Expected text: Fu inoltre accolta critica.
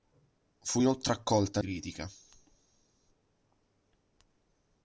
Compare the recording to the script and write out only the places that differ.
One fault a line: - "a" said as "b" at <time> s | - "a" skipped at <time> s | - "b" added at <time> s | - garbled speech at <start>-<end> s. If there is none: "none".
none